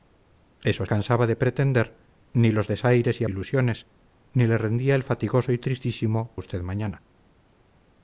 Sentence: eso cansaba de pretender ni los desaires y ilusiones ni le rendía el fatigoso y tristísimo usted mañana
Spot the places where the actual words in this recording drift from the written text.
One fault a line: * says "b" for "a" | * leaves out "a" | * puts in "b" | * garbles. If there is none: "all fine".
all fine